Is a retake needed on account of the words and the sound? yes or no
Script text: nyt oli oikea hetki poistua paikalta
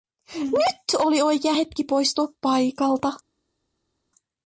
no